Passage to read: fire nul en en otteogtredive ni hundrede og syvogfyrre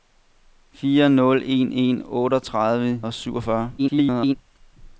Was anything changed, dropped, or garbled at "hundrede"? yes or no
yes